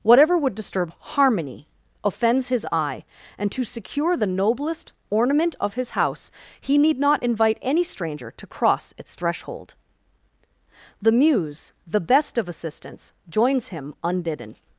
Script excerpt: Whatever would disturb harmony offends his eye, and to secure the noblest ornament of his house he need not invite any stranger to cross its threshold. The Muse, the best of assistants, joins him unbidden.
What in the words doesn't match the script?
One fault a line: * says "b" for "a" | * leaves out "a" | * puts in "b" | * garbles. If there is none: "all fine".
all fine